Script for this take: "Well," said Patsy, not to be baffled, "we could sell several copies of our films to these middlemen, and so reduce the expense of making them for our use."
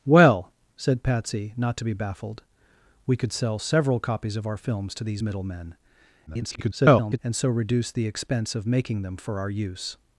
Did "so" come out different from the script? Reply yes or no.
no